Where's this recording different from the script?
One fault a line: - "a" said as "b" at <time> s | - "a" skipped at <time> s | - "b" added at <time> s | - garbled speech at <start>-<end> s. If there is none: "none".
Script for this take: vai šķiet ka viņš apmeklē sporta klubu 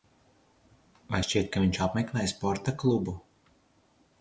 none